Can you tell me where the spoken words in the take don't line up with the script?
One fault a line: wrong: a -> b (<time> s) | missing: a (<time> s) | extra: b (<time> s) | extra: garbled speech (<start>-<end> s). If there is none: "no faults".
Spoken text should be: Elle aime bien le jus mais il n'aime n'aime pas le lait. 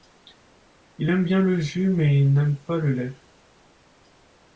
wrong: Elle -> Il (1.0 s)
missing: n'aime (2.6 s)